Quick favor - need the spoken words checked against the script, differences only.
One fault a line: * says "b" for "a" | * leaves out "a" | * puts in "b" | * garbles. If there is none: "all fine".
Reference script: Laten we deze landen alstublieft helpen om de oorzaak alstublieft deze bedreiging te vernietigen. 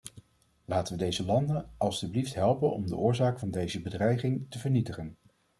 * says "van" for "alstublieft"